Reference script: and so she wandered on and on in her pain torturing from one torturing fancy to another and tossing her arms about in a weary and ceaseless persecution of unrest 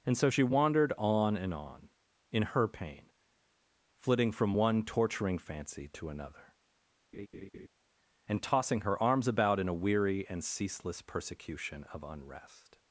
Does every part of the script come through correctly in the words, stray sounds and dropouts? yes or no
no